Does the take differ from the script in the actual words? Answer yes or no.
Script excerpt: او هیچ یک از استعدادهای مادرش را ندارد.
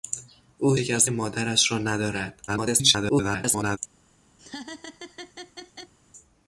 yes